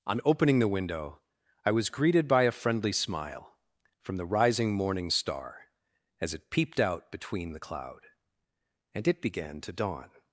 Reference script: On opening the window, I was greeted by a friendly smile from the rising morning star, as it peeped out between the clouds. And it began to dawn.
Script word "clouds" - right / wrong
wrong